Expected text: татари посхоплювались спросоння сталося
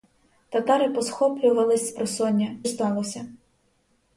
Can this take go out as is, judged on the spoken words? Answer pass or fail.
pass